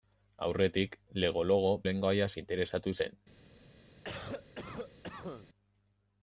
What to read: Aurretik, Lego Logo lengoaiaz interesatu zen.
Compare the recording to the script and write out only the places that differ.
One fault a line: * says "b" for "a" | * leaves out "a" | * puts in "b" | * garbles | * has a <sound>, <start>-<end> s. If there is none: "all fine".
* has a cough, 4.0-5.5 s